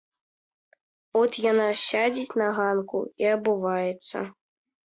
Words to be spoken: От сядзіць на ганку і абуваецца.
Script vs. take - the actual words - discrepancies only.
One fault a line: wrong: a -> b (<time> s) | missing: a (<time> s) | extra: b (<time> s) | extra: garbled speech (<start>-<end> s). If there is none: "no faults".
extra: яна (1.5 s)